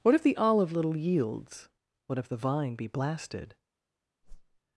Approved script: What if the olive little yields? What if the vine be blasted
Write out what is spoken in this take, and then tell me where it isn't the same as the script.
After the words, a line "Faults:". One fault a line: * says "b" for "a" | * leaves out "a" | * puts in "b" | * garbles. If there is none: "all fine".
What if the olive little yields? What if the vine be blasted
Faults:
all fine